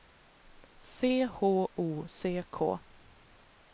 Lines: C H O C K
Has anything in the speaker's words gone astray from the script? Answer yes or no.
no